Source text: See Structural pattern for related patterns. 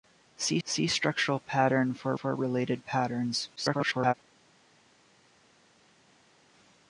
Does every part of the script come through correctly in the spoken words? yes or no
no